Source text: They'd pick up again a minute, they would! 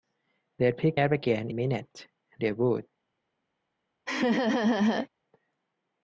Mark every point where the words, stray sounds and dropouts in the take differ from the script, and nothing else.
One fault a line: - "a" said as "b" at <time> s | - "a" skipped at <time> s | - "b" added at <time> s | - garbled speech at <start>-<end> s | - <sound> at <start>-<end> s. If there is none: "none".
- laugh at 4.1-5.1 s